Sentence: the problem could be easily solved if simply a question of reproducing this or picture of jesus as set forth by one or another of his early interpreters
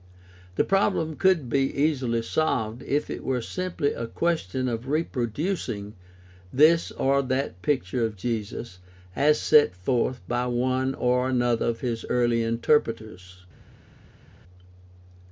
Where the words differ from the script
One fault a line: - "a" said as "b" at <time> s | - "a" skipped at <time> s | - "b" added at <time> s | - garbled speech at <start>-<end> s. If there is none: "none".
- "it were" added at 3.1 s
- "that" added at 7.2 s